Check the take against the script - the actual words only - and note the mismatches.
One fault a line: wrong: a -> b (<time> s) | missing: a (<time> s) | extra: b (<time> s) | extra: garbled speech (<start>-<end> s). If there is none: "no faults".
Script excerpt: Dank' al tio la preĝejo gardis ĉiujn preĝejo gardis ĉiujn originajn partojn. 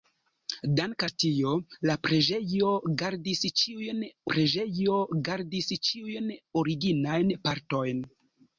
no faults